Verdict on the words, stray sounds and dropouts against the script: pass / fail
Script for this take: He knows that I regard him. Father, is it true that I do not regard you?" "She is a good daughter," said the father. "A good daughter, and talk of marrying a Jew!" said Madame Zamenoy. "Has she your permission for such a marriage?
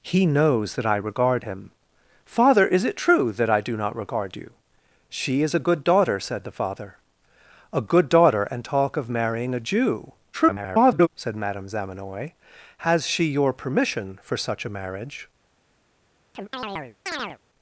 fail